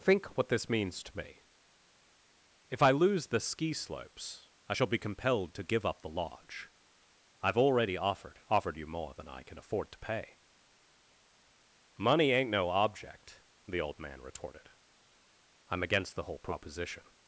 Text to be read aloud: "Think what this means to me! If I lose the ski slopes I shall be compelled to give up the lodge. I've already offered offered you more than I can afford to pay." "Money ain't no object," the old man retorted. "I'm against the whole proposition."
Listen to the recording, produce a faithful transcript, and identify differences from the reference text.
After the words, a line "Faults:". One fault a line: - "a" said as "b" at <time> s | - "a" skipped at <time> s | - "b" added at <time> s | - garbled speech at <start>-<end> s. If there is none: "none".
"Think what this means to me! If I lose the ski slopes I shall be compelled to give up the lodge. I've already offered offered you more than I can afford to pay." "Money ain't no object," the old man retorted. "I'm against the whole proposition."
Faults:
none